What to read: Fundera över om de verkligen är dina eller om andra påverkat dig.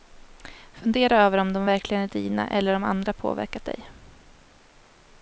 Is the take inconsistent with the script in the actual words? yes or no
no